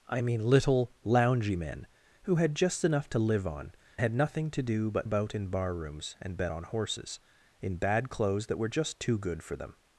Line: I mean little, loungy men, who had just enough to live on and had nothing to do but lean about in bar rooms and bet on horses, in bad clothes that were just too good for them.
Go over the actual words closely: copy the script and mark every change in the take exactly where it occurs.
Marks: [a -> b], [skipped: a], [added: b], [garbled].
I mean little, loungy men, who had just enough to live on [skipped: and] had nothing to do but [skipped: lean] about in bar rooms and bet on horses, in bad clothes that were just too good for them.